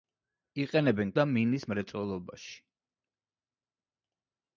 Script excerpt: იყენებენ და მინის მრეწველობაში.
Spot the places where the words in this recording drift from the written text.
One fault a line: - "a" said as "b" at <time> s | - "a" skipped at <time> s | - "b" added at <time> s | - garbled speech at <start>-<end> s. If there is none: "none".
none